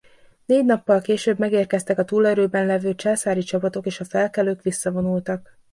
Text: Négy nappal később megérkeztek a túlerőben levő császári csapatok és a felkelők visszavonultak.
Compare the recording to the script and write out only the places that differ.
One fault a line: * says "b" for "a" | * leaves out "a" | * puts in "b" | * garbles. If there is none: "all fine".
all fine